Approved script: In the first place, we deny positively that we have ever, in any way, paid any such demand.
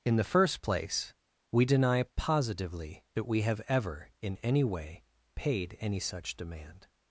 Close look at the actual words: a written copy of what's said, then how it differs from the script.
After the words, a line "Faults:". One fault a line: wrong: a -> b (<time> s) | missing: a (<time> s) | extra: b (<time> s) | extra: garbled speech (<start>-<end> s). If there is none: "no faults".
In the first place, we deny positively that we have ever, in any way, paid any such demand.
Faults:
no faults